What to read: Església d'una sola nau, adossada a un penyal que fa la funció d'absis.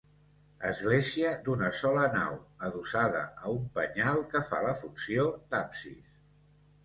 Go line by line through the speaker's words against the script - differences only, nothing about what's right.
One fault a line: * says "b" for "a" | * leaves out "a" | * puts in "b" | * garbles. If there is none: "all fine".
all fine